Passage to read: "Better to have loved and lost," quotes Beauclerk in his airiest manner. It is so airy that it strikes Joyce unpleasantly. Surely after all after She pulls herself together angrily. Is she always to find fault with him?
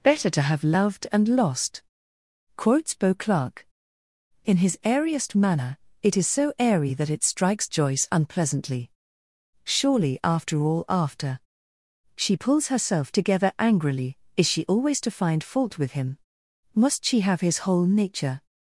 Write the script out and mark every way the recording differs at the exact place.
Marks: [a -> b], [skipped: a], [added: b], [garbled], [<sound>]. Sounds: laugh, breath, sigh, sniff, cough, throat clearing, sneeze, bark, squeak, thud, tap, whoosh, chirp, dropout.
"Better to have loved and lost," quotes Beauclerk in his airiest manner. It is so airy that it strikes Joyce unpleasantly. Surely after all after She pulls herself together angrily. Is she always to find fault with him? [added: Must she have his whole nature]